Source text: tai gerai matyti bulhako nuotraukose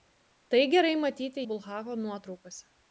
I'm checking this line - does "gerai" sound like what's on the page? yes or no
yes